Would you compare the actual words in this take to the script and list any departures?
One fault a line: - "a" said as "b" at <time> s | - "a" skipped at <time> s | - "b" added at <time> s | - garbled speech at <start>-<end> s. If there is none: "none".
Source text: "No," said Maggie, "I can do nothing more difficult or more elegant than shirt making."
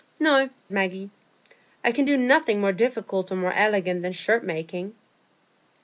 - "said" skipped at 0.5 s